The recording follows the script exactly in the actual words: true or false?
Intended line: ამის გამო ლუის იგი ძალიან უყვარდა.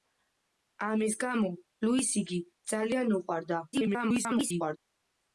false